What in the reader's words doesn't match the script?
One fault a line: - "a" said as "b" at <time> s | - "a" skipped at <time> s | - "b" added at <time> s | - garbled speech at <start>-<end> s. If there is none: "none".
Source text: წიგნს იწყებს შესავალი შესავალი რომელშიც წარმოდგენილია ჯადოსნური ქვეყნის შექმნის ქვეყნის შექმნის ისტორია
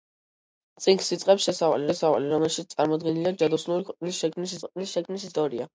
none